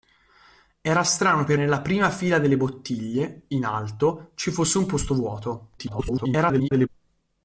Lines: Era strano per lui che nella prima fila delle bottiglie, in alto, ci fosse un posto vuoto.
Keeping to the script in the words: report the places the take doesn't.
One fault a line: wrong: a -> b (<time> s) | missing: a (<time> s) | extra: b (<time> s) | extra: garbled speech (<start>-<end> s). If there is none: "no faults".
missing: lui che (1.6 s)
extra: garbled speech (5.8-6.9 s)